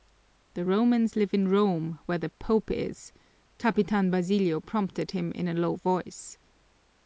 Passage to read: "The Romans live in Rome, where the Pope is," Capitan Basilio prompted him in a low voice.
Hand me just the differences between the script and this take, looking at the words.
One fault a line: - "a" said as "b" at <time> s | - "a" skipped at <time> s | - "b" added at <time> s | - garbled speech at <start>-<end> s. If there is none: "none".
none